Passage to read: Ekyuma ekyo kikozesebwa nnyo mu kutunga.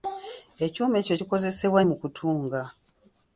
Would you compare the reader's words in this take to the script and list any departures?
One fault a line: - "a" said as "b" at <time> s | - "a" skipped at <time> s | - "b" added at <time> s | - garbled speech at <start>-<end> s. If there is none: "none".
- "nnyo" skipped at 1.8 s